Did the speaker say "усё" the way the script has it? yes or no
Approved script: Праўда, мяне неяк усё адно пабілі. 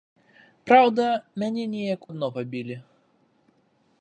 no